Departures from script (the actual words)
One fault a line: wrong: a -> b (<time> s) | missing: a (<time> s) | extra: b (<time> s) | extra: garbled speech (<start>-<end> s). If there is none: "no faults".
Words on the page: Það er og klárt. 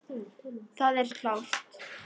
no faults